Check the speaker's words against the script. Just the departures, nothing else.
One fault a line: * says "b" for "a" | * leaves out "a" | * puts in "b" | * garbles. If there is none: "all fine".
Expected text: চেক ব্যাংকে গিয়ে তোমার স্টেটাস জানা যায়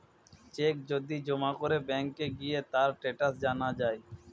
* puts in "যদি জমা করে"
* says "তার" for "তোমার"